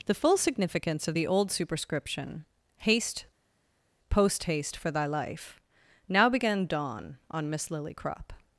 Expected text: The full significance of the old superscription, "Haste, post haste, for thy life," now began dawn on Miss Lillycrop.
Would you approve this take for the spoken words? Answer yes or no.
yes